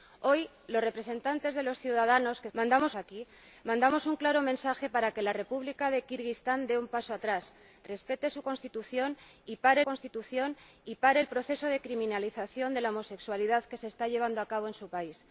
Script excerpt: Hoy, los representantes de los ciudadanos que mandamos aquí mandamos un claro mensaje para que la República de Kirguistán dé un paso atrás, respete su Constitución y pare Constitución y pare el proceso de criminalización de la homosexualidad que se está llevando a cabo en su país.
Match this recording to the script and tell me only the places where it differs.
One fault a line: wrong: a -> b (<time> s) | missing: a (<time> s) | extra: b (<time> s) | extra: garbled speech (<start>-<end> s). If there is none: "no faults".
no faults